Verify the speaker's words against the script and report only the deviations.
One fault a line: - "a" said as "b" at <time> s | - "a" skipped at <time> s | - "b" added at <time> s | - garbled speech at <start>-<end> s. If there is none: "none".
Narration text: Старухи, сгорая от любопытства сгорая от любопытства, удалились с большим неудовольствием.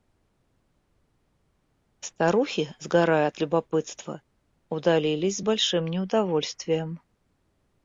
- "сгорая от любопытства" skipped at 4.2 s